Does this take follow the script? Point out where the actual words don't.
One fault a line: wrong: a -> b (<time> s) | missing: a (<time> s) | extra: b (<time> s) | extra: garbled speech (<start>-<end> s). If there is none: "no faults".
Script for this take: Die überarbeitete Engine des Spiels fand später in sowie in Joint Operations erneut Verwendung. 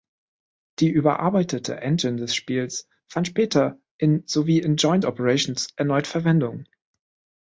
no faults